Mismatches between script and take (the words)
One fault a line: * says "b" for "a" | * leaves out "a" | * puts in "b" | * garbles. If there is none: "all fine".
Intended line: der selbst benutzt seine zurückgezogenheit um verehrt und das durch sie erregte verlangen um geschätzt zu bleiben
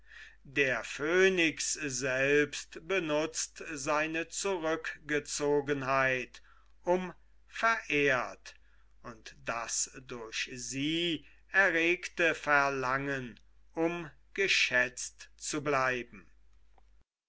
* puts in "phönix"